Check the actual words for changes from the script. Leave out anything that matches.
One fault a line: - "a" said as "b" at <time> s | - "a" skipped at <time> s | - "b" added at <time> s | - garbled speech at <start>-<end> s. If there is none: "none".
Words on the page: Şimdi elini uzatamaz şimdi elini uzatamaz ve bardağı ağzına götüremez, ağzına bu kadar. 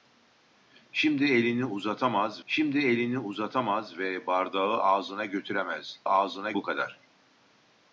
none